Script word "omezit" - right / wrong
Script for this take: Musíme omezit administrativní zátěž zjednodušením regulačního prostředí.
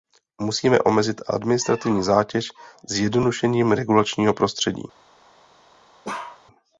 right